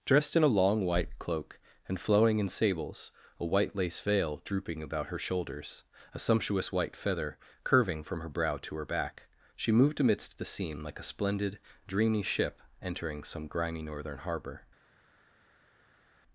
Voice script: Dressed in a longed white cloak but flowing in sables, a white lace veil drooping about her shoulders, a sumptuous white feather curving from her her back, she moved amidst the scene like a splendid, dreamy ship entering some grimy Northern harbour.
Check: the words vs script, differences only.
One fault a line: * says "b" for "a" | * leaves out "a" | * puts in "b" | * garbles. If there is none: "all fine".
* says "long" for "longed"
* says "and" for "but"
* puts in "brow to"